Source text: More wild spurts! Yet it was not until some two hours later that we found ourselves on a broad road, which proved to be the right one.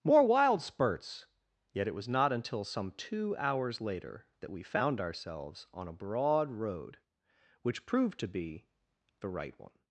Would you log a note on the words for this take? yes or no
no